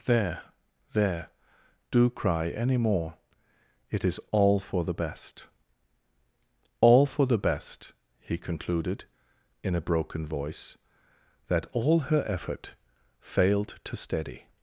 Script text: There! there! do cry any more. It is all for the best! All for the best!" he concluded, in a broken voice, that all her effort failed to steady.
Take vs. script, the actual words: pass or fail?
pass